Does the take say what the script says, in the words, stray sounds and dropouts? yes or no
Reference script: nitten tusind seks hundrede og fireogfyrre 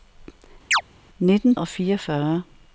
no